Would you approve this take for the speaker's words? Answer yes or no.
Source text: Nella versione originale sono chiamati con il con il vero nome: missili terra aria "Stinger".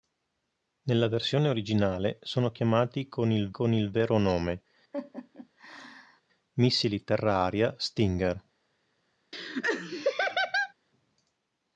yes